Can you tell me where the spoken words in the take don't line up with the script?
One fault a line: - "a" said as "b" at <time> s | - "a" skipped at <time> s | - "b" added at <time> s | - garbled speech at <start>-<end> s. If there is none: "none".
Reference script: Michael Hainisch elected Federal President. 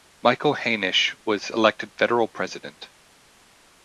- "was" added at 1.2 s